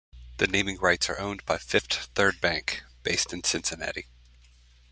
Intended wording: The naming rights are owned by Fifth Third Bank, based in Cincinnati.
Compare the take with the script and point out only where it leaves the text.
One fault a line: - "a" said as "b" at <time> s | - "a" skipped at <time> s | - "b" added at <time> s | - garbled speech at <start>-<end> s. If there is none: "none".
none